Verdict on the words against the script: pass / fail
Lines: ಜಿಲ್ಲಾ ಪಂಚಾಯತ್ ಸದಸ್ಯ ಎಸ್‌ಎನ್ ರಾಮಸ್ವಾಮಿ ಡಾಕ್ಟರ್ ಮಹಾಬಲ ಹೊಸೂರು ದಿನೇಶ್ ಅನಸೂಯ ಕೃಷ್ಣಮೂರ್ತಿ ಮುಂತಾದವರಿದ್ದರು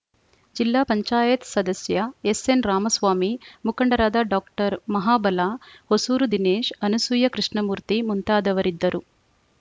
fail